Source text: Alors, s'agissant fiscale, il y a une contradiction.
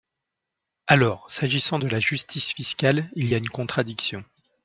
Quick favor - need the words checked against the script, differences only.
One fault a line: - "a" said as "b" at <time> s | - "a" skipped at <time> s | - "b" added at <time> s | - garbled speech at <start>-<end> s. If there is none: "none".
- "de la justice" added at 1.8 s